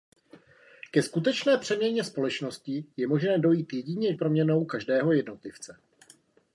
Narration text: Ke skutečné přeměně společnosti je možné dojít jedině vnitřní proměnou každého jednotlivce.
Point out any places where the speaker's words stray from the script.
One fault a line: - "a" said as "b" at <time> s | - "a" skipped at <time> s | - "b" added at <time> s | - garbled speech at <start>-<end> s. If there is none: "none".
- "vnitřní" skipped at 4.1 s